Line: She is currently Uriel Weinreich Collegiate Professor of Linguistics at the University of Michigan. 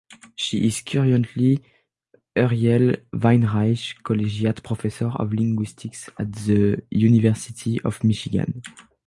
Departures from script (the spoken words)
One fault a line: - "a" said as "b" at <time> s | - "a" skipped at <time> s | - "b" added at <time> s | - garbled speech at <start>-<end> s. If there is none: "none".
none